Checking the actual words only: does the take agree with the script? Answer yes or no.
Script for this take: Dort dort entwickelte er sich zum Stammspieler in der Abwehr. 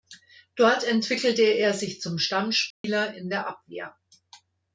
no